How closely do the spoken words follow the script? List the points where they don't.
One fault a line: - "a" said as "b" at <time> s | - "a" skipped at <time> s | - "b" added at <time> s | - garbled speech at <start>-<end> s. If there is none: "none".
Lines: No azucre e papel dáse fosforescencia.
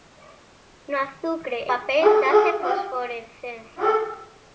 none